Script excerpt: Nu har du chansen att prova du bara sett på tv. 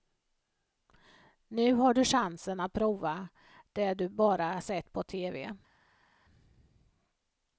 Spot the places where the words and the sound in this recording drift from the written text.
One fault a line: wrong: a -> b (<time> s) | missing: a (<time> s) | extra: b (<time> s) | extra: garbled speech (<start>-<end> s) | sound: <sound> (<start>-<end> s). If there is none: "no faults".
extra: det (3.7 s)